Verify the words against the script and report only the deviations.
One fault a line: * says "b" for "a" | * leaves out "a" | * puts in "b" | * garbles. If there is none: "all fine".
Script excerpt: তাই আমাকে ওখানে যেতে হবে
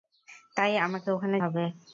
* leaves out "যেতে"